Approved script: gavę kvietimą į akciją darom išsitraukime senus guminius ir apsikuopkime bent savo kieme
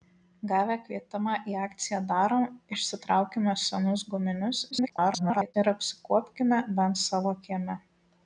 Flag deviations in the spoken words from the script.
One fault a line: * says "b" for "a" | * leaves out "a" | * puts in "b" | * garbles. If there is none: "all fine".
* garbles